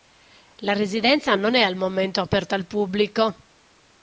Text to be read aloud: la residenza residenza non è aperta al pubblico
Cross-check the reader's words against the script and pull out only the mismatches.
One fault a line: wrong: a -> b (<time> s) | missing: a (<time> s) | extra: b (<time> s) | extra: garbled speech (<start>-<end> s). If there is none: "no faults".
missing: residenza (1.4 s)
extra: al momento (1.6 s)